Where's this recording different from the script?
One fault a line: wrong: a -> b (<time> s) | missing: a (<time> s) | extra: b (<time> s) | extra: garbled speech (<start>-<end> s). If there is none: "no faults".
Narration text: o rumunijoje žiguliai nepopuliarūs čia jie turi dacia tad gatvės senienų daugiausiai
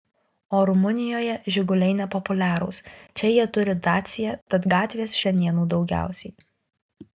no faults